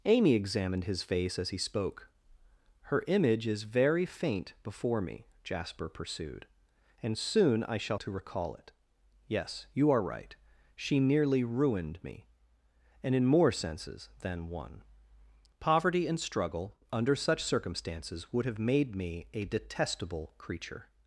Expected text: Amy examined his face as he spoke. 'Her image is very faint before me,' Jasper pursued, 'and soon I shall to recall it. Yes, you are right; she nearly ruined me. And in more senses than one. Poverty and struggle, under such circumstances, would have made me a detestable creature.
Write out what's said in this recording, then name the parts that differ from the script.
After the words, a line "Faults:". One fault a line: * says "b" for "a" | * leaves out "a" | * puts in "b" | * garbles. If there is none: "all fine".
Amy examined his face as he spoke. 'Her image is very faint before me,' Jasper pursued, 'and soon I shall to recall it. Yes, you are right; she nearly ruined me. And in more senses than one. Poverty and struggle, under such circumstances, would have made me a detestable creature.
Faults:
all fine